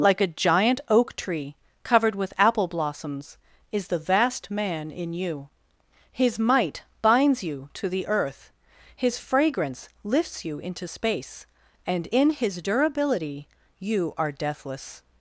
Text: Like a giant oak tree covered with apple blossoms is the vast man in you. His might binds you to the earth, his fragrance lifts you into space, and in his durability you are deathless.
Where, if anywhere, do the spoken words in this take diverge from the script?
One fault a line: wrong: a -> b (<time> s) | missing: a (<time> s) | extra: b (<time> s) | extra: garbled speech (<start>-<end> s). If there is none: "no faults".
no faults